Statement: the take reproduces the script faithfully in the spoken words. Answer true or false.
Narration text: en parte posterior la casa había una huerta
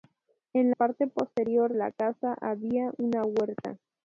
true